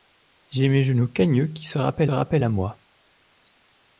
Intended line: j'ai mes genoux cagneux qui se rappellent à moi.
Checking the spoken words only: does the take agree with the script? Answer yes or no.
no